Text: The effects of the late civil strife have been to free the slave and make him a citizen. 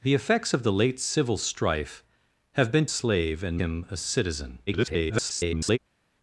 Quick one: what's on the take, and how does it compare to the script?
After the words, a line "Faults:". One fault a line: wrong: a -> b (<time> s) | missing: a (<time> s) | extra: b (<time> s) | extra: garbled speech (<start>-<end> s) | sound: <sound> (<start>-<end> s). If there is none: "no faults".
The effects of the late civil strife have been slave and him a citizen. [garbled]
Faults:
missing: to free the (2.9 s)
missing: make (3.6 s)
extra: garbled speech (4.7-5.8 s)